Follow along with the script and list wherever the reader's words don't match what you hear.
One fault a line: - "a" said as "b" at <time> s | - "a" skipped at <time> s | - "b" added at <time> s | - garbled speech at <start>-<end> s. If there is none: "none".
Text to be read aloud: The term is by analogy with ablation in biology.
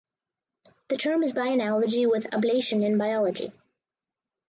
none